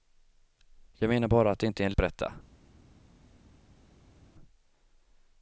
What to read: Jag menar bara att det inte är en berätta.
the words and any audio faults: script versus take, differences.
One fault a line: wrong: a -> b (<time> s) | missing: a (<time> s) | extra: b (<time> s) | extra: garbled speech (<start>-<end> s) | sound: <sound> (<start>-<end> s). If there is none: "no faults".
no faults